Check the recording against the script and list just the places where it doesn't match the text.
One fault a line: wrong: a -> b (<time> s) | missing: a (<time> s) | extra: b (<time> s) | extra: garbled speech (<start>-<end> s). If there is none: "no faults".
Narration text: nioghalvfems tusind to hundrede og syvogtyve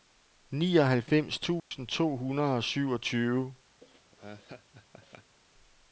no faults